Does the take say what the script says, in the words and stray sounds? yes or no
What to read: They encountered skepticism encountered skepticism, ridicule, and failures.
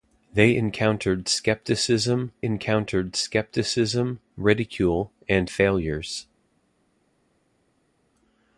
yes